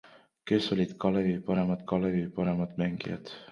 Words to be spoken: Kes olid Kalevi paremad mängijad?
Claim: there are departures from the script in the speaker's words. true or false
true